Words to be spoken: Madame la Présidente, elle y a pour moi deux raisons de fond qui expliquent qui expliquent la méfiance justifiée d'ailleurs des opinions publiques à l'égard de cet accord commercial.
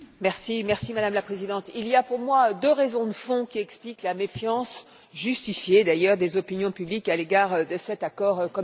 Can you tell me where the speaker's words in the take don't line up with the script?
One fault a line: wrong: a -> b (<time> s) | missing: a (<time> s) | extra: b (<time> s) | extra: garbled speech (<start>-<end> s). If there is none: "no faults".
wrong: elle -> il (1.8 s)
missing: qui expliquent (4.0 s)